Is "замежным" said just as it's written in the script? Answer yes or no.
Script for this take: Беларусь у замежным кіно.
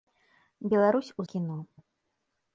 no